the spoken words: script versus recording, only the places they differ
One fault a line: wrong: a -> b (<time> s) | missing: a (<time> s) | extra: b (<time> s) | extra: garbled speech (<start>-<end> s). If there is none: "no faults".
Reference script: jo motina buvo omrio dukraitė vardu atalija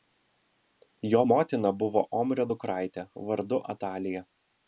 no faults